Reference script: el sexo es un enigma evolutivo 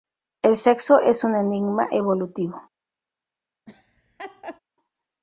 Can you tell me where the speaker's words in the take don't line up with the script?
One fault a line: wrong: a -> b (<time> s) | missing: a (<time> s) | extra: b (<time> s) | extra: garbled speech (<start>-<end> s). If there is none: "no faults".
no faults